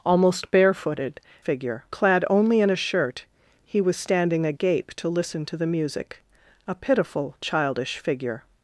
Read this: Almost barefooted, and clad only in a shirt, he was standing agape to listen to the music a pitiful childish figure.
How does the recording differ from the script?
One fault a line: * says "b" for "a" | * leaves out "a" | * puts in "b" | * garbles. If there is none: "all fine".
* says "figure" for "and"